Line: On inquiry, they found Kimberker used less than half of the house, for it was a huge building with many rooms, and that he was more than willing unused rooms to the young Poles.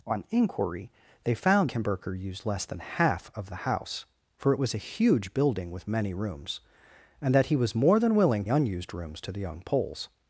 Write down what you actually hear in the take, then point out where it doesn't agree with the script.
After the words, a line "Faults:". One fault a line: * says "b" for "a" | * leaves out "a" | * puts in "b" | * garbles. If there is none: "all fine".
On inquiry, they found Kimberker used less than half of the house, for it was a huge building with many rooms, and that he was more than willing unused rooms to the young Poles.
Faults:
all fine